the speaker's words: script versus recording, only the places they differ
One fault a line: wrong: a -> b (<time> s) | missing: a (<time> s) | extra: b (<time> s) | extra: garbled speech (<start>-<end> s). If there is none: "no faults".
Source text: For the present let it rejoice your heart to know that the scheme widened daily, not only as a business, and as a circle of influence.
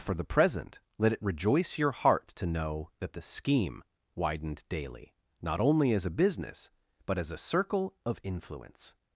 wrong: and -> but (7.0 s)